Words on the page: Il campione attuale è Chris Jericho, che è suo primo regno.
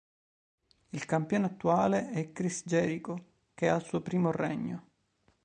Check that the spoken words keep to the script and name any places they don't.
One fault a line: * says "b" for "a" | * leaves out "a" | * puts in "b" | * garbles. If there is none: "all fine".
* puts in "al"